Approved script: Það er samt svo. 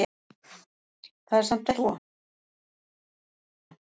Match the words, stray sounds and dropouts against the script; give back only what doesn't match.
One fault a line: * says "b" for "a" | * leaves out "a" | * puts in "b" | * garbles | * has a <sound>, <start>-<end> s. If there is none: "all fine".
all fine